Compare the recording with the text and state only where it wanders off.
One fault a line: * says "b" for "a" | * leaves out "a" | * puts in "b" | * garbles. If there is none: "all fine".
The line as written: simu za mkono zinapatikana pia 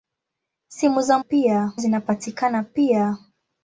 * says "pia" for "mkono"